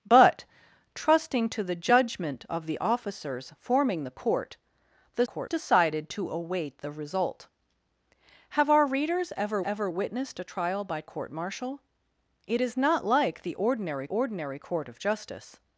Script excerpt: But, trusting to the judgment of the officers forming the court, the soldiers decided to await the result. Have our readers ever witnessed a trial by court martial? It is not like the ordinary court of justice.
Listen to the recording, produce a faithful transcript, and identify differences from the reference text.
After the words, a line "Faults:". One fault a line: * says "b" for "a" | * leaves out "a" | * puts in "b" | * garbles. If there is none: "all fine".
But, trusting to the judgment of the officers forming the court, the court decided to await the result. Have our readers ever ever witnessed a trial by court martial? It is not like the ordinary ordinary court of justice.
Faults:
* says "court" for "soldiers"
* puts in "ever"
* puts in "ordinary"